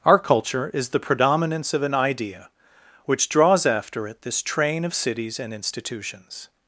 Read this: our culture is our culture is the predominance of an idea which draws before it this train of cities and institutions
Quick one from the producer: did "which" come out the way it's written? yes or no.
yes